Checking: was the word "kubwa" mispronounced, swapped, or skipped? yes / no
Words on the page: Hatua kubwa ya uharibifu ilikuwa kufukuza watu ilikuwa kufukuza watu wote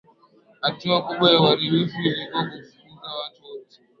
no